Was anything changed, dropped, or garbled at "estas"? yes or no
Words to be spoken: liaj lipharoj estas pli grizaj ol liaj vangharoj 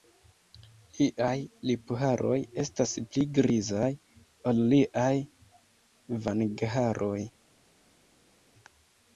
no